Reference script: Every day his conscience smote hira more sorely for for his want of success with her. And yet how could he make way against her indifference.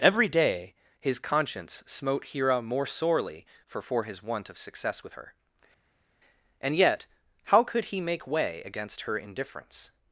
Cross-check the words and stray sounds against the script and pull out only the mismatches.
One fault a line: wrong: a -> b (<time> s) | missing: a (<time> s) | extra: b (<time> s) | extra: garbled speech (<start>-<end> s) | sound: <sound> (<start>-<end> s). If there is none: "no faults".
no faults